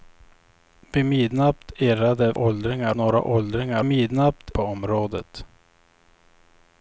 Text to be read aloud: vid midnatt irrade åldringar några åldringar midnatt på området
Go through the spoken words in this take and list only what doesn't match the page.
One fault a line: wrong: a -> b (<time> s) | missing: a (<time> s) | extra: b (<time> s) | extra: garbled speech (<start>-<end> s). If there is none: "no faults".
no faults